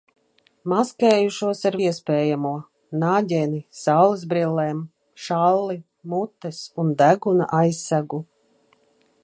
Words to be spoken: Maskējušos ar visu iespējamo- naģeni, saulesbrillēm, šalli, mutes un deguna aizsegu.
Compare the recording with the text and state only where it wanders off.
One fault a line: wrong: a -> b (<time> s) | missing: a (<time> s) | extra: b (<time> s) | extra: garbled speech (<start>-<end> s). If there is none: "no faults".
missing: visu (1.8 s)